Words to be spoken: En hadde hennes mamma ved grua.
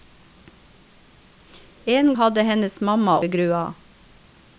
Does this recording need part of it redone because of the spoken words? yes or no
no